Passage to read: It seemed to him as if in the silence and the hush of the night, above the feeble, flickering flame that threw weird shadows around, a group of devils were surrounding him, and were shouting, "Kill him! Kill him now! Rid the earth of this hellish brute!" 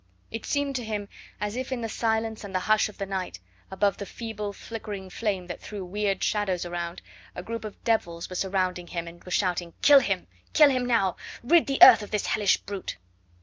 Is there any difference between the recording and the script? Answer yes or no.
no